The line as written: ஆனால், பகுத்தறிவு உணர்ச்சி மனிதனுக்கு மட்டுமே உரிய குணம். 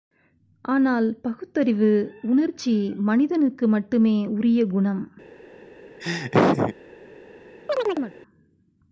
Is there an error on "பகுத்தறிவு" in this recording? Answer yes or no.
no